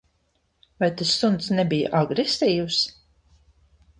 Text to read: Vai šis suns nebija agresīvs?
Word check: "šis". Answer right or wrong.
wrong